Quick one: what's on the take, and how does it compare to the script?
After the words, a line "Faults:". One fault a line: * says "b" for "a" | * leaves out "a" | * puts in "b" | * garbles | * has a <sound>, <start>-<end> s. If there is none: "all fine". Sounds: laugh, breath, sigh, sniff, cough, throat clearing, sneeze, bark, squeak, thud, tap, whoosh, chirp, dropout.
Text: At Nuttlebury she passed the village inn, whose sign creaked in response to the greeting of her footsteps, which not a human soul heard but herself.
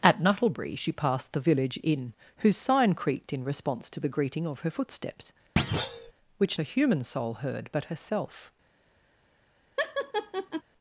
At Nuttlebury she passed the village inn, whose sign creaked in response to the greeting of her footsteps, which a human soul heard but herself.
Faults:
* has a thud, 5.6-6.1 s
* leaves out "not"
* has a laugh, 9.8-10.6 s